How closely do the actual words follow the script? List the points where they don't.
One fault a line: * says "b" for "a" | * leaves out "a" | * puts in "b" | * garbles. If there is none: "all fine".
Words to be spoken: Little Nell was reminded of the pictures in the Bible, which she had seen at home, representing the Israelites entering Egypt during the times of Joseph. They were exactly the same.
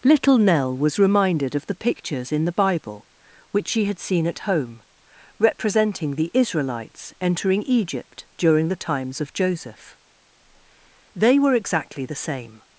all fine